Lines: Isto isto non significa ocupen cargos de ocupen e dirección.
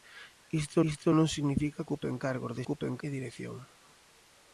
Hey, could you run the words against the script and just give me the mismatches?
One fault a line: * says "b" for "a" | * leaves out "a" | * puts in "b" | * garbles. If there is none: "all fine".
all fine